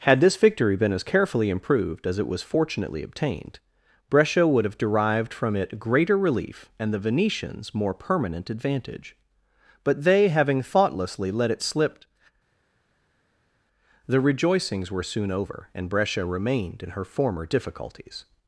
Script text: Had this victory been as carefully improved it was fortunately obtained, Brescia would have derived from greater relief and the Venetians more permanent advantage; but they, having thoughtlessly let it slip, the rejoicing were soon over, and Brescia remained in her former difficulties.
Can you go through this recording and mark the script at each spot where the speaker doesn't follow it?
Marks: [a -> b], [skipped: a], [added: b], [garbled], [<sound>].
Had this victory been as carefully improved [added: as] it was fortunately obtained, Brescia would have derived from [added: it] greater relief and the Venetians more permanent advantage; but they, having thoughtlessly let it slip, the [rejoicing -> rejoicings] were soon over, and Brescia remained in her former difficulties.